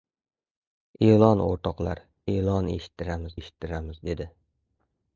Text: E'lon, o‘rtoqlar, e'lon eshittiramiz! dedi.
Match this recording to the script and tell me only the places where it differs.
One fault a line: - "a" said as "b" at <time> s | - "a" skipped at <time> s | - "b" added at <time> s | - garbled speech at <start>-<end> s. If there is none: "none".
- "eshittiramiz" added at 3.4 s